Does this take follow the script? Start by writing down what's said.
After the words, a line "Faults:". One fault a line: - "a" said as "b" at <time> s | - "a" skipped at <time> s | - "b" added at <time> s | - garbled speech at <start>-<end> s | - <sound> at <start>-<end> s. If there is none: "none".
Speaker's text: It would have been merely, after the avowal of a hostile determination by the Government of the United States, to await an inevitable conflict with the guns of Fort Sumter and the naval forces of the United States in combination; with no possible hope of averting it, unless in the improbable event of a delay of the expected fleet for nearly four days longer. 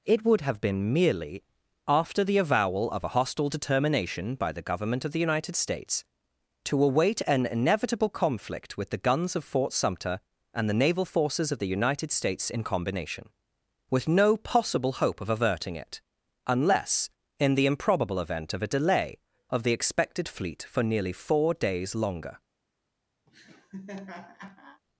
It would have been merely, after the avowal of a hostile determination by the Government of the United States, to await an inevitable conflict with the guns of Fort Sumter and the naval forces of the United States in combination; with no possible hope of averting it, unless in the improbable event of a delay of the expected fleet for nearly four days longer.
Faults:
- laugh at 23.3-24.8 s